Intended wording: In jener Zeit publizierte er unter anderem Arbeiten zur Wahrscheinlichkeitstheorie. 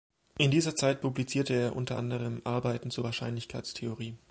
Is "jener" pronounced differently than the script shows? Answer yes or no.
yes